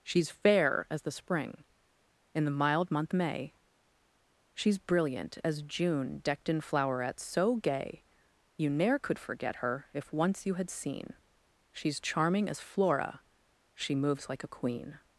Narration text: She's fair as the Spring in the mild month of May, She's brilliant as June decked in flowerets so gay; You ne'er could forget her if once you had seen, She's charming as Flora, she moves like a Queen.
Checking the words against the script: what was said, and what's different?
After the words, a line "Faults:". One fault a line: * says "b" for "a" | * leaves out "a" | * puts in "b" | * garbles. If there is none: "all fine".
She's fair as the Spring in the mild month May, She's brilliant as June decked in flowerets so gay; You ne'er could forget her if once you had seen, She's charming as Flora, she moves like a Queen.
Faults:
* leaves out "of"